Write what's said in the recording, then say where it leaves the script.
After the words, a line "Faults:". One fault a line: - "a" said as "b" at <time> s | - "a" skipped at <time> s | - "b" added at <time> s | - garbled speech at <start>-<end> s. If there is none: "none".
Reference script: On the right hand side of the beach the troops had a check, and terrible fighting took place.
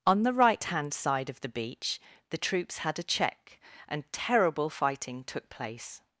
On the right hand side of the beach the troops had a check, and terrible fighting took place.
Faults:
none